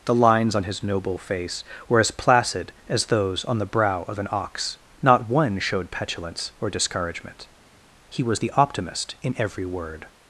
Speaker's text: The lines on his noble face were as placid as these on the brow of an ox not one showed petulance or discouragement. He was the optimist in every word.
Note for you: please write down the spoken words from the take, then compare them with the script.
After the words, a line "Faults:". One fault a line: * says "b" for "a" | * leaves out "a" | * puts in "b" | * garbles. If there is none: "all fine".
The lines on his noble face were as placid as those on the brow of an ox not one showed petulance or discouragement. He was the optimist in every word.
Faults:
* says "those" for "these"